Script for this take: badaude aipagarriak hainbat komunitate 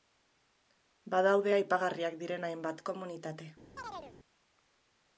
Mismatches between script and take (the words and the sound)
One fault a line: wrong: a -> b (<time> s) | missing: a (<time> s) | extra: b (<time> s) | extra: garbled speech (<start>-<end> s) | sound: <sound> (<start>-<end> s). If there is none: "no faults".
extra: diren (2.2 s)
sound: chirp (3.8-4.1 s)